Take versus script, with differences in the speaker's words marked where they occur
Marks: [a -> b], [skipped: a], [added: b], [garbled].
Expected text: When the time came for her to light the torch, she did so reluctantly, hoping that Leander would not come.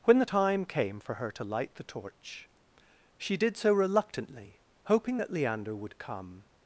When the time came for her to light the torch, she did so reluctantly, hoping that Leander would [skipped: not] come.